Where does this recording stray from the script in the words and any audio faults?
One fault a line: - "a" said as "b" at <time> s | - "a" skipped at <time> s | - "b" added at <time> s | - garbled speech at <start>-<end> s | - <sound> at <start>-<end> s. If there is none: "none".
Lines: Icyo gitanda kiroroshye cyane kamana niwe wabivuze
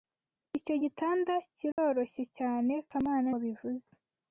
- dropout at 1.7-1.8 s
- "niwe" skipped at 3.3 s